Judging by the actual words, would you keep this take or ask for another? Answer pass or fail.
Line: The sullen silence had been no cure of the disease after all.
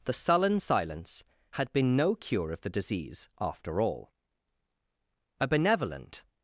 fail